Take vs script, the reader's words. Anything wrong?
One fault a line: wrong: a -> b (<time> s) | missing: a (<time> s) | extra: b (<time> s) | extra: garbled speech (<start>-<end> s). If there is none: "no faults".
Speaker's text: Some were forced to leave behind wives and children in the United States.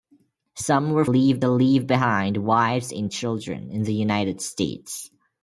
wrong: forced -> leave (1.0 s)